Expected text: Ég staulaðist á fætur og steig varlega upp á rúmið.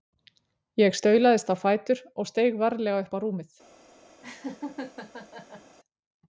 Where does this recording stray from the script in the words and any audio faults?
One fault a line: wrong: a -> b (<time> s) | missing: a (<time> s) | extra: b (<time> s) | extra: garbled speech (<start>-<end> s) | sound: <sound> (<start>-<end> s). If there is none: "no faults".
sound: laugh (4.2-5.8 s)